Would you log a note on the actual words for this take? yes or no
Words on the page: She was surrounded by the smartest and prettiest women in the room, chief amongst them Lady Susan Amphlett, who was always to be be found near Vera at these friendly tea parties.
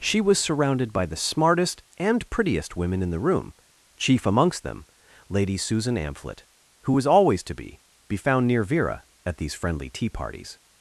no